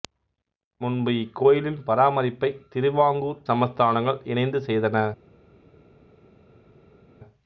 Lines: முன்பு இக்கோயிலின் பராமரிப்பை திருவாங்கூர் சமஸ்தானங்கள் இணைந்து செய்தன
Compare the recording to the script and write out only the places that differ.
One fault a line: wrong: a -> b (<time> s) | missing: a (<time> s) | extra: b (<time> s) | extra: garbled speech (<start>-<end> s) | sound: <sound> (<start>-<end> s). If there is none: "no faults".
no faults